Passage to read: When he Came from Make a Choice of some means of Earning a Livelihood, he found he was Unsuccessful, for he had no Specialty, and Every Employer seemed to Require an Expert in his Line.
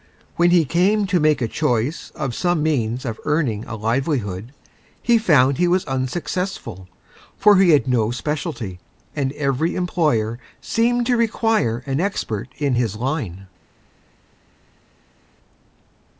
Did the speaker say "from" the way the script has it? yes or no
no